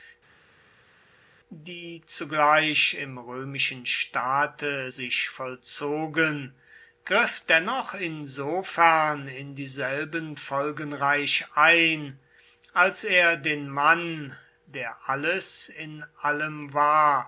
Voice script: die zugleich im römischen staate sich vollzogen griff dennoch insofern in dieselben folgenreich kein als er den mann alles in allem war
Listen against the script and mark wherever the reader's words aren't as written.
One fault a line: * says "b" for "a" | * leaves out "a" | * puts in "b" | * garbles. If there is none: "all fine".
* says "ein" for "kein"
* puts in "der"